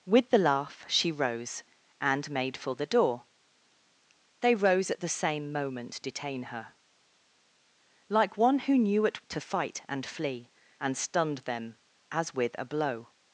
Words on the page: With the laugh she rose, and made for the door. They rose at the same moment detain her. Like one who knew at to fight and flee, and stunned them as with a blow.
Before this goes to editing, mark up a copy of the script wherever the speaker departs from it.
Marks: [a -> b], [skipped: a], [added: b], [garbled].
With the laugh she rose, and made for the door. They rose at the same moment detain her. Like one who knew at to fight and flee, and stunned them as with a blow.